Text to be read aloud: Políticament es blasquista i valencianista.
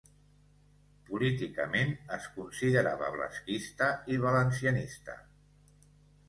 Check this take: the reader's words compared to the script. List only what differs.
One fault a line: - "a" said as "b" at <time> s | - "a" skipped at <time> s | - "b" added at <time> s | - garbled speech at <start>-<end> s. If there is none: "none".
- "considerava" added at 2.4 s